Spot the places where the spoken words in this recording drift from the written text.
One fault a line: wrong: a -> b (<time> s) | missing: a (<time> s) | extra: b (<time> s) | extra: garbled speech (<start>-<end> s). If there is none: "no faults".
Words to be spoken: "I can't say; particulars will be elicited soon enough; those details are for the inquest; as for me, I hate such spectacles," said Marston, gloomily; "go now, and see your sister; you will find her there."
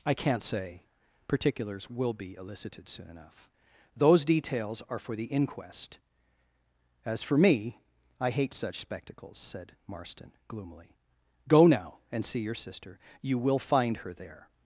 no faults